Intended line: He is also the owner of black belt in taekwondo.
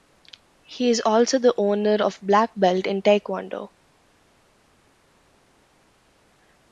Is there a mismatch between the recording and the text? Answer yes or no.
no